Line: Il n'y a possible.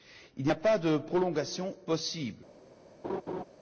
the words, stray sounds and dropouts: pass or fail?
fail